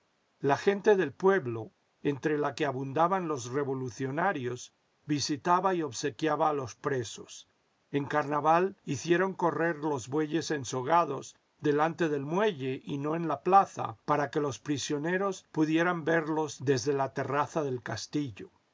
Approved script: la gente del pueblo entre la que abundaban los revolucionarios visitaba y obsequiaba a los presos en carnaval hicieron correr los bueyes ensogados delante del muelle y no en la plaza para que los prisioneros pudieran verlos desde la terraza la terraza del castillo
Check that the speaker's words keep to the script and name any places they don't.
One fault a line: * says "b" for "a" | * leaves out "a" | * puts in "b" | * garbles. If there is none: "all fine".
* leaves out "la terraza"